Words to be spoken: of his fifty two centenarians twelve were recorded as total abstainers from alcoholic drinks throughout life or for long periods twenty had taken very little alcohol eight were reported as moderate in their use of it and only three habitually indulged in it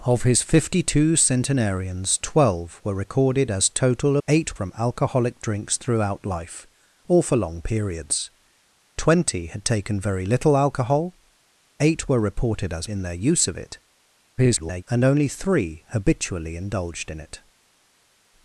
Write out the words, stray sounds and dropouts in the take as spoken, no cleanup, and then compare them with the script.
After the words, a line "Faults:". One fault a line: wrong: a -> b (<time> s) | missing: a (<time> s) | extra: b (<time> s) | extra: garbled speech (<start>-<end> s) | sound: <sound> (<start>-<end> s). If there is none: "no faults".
of his fifty two centenarians twelve were recorded as total eight from alcoholic drinks throughout life or for long periods twenty had taken very little alcohol eight were reported as in their use of it [garbled] and only three habitually indulged in it
Faults:
wrong: abstainers -> eight (4.3 s)
missing: moderate (12.9 s)
extra: garbled speech (14.4-14.8 s)